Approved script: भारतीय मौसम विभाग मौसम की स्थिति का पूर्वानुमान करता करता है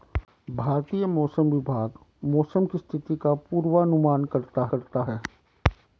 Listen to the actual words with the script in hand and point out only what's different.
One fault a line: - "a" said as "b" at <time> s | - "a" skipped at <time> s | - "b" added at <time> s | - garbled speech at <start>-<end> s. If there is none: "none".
none